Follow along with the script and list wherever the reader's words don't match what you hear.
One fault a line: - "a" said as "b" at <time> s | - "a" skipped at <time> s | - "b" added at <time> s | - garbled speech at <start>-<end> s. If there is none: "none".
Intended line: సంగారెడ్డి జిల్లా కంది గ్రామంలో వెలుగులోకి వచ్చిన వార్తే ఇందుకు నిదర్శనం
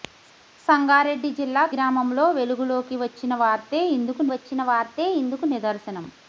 - "కంది" skipped at 1.6 s
- "వచ్చిన వార్తే ఇందుకు" added at 4.3 s